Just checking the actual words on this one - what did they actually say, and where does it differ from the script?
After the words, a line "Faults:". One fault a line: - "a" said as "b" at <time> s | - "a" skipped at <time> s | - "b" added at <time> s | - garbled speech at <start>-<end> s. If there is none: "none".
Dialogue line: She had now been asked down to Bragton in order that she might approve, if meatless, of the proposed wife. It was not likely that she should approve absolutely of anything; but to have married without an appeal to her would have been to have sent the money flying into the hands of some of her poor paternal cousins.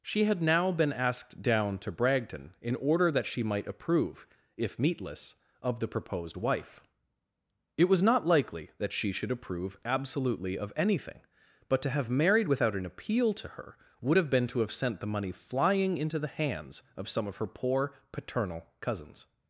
She had now been asked down to Bragton in order that she might approve, if meatless, of the proposed wife. It was not likely that she should approve absolutely of anything; but to have married without an appeal to her would have been to have sent the money flying into the hands of some of her poor paternal cousins.
Faults:
none